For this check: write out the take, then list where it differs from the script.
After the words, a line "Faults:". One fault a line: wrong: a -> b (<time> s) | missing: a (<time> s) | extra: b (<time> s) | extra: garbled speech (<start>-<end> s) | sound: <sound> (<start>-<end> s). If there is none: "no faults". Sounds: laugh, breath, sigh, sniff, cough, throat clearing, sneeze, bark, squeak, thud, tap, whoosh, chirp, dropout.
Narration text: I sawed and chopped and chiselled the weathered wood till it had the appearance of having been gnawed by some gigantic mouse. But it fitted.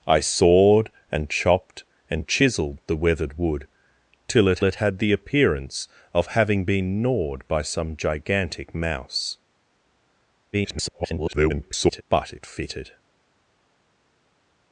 I sawed and chopped and chiselled the weathered wood till it it had the appearance of having been gnawed by some gigantic mouse. [garbled] But it fitted.
Faults:
extra: it (4.6 s)
extra: garbled speech (10.5-12.0 s)